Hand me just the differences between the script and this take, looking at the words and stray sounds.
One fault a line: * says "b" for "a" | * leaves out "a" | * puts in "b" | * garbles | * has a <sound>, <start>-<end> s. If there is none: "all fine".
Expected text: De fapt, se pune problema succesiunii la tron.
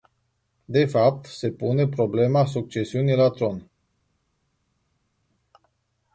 all fine